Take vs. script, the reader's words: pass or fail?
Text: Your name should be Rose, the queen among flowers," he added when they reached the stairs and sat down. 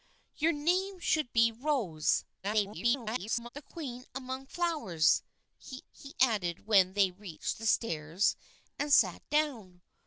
fail